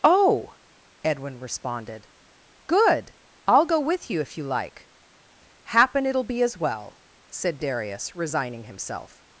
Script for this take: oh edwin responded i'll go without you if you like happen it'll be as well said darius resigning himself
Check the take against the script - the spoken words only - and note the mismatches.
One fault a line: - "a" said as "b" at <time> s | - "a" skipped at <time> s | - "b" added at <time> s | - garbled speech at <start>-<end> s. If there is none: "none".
- "good" added at 2.6 s
- "without" said as "with" at 3.8 s